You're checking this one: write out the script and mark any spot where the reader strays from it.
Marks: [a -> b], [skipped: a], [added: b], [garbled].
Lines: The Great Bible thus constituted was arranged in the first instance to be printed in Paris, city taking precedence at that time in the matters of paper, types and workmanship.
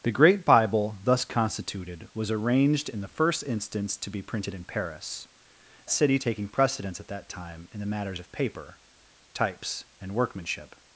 The Great Bible thus constituted was arranged in the first instance to be printed in Paris, city taking precedence at that time in the matters of paper, types and workmanship.